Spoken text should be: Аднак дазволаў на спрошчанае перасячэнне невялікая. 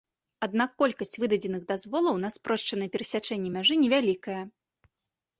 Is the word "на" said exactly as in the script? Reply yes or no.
yes